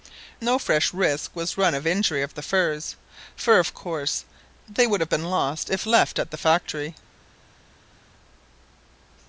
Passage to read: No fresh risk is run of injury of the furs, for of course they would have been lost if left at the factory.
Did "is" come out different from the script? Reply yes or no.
yes